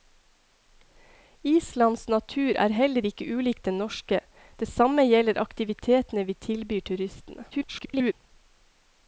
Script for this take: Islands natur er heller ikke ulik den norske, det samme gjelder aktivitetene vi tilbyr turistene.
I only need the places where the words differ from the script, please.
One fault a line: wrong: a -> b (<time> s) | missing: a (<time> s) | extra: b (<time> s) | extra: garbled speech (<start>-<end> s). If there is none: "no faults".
extra: garbled speech (7.5-8.1 s)